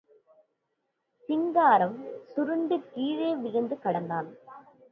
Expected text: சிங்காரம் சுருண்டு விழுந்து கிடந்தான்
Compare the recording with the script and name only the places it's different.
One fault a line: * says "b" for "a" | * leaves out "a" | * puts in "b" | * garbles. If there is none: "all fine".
* puts in "கீழே"